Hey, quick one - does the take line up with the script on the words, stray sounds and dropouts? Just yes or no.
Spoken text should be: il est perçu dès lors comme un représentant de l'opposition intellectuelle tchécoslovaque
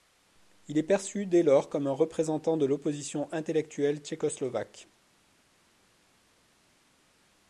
yes